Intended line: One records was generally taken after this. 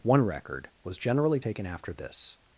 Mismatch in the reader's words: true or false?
true